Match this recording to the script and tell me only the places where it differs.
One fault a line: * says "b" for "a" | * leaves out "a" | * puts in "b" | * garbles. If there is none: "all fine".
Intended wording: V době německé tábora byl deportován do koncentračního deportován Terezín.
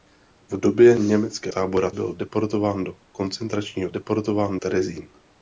all fine